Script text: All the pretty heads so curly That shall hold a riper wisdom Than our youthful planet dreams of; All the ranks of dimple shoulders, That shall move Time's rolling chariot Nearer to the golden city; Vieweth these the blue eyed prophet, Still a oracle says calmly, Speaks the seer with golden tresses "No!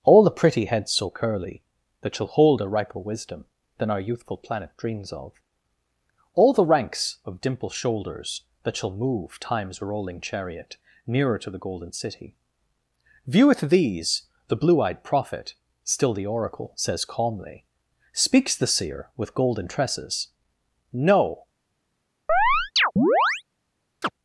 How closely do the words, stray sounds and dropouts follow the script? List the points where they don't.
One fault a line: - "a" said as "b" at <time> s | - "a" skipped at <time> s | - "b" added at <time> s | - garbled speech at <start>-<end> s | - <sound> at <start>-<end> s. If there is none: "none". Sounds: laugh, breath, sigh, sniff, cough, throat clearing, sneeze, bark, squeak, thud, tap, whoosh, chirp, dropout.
- "a" said as "the" at 16.1 s
- chirp at 22.3-23.4 s
- chirp at 24.0-24.1 s